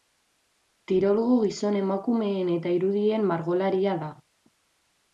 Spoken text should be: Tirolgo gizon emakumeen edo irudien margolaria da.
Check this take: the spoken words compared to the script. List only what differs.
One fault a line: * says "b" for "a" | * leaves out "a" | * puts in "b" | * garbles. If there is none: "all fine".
* says "eta" for "edo"